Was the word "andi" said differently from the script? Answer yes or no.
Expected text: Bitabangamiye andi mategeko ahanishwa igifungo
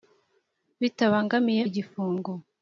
yes